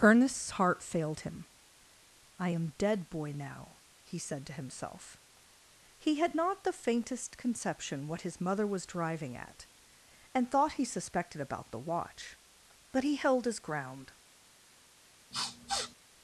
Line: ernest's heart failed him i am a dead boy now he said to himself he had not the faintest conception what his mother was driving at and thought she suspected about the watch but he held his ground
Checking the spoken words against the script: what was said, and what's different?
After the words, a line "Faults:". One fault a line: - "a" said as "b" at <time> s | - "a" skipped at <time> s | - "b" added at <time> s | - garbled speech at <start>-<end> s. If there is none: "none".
ernest's heart failed him i am dead boy now he said to himself he had not the faintest conception what his mother was driving at and thought he suspected about the watch but he held his ground
Faults:
- "a" skipped at 2.7 s
- "she" said as "he" at 10.7 s